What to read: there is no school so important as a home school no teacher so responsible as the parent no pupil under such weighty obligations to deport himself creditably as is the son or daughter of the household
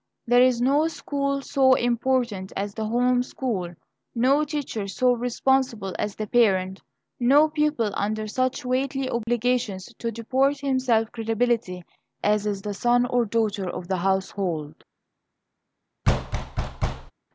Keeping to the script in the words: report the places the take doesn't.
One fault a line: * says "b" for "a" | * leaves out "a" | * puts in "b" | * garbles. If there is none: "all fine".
* says "the" for "a"